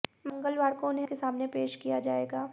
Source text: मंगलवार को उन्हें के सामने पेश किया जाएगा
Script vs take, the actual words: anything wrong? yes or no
no